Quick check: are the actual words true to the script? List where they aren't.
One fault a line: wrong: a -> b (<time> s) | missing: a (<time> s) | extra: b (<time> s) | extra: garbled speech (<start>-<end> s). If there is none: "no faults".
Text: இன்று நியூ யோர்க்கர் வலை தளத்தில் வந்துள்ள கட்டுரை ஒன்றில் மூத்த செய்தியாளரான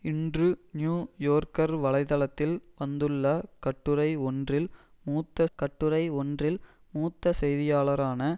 extra: கட்டுரை ஒன்றில் மூத்த (5.6 s)